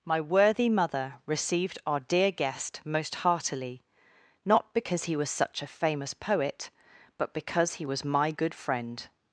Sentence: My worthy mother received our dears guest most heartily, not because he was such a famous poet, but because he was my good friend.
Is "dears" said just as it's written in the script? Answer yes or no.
no